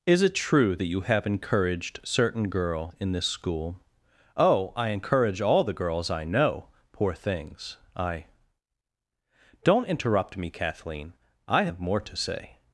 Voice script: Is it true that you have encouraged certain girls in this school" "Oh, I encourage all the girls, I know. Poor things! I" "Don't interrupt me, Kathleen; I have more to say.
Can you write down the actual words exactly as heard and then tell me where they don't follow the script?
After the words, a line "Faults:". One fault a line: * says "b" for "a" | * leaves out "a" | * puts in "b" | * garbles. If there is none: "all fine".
Is it true that you have encouraged certain girl in this school" "Oh, I encourage all the girls, I know. Poor things! I" "Don't interrupt me, Kathleen; I have more to say.
Faults:
* says "girl" for "girls"